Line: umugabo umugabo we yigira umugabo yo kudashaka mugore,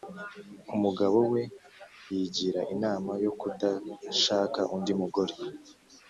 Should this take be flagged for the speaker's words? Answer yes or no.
yes